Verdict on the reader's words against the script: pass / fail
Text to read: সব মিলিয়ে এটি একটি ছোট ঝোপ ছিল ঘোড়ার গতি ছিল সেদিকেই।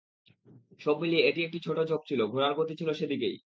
pass